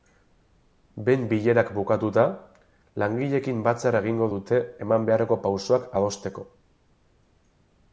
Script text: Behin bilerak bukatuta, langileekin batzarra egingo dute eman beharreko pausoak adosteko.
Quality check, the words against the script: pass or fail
pass